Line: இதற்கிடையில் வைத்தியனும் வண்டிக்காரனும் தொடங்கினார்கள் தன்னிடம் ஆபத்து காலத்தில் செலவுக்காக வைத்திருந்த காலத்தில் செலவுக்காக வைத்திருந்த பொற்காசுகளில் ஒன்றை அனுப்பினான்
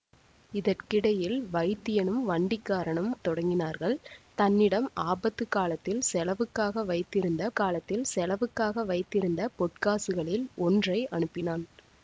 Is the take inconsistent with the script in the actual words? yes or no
no